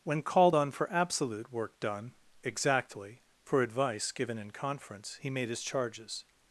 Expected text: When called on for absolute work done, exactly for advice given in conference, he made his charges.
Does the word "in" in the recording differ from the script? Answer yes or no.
no